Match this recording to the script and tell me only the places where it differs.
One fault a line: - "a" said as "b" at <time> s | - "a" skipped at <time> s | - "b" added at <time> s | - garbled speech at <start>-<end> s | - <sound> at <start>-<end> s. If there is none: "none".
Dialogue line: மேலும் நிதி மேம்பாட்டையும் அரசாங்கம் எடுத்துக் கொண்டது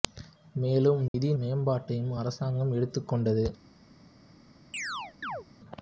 - dropout at 1.1-1.1 s
- chirp at 4.7-5.5 s